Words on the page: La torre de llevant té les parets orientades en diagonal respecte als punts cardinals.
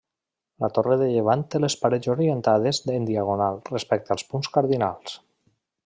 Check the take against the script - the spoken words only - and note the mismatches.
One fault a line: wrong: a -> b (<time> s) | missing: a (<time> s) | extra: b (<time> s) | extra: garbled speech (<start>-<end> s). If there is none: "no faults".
no faults